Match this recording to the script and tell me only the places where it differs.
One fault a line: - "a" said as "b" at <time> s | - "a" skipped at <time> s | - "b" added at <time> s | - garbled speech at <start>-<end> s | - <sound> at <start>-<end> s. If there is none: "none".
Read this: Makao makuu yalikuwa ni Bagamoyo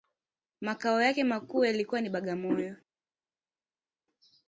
- "yake" added at 1.0 s